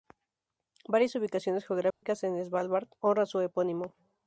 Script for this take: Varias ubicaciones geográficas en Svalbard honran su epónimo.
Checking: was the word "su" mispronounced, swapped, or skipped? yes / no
no